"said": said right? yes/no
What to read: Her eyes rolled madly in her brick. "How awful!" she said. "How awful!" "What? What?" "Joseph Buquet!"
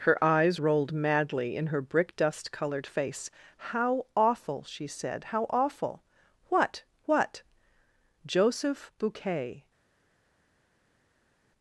yes